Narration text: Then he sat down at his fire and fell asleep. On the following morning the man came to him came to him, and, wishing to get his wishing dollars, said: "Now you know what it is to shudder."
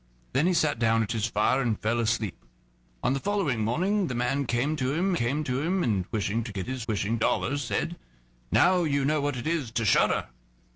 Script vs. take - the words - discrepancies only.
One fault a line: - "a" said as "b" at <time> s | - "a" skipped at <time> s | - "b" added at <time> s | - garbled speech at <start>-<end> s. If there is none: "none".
none